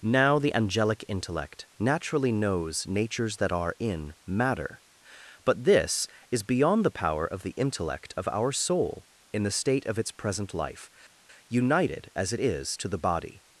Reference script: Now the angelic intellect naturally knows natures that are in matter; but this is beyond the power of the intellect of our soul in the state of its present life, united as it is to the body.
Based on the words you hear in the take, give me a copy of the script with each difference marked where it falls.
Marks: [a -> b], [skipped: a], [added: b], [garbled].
Now the angelic intellect naturally knows natures that are in matter; but this is beyond the power of the intellect of our soul in the state of its present life, united as it is to the body.